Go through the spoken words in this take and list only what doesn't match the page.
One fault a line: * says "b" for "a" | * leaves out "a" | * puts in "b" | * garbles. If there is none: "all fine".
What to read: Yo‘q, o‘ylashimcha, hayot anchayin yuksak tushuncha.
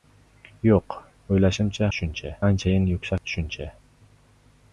* says "tushuncha" for "hayot"